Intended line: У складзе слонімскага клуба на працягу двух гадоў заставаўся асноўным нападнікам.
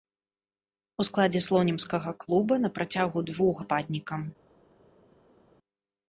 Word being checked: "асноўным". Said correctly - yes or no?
no